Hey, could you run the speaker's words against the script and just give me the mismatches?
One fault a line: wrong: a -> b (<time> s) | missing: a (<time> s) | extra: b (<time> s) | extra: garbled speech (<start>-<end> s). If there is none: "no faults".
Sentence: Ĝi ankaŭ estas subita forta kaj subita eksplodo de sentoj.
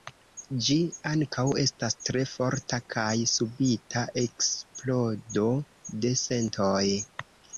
wrong: subita -> tre (2.1 s)